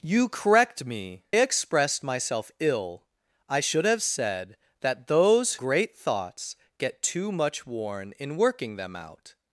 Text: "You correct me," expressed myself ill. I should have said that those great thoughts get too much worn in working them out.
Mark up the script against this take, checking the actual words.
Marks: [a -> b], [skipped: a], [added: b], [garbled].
"You correct me," expressed myself ill. I should have said that those great thoughts get too much worn in working them out.